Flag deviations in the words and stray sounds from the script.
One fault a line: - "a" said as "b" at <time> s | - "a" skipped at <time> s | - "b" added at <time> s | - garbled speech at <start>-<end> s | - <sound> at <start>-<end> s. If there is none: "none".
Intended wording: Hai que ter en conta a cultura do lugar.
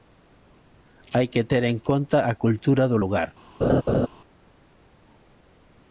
- laugh at 3.6-4.1 s